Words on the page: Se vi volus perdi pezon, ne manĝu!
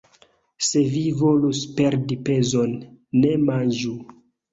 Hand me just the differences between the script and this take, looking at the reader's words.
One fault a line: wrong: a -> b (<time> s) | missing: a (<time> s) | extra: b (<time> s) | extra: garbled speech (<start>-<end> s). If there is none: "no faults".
no faults